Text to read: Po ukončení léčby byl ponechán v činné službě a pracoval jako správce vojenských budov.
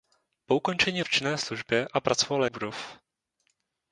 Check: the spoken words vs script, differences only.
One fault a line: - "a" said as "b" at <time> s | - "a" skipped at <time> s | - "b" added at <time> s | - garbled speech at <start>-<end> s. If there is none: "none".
- "léčby byl ponechán" skipped at 1.0 s
- "jako správce vojenských" skipped at 2.4 s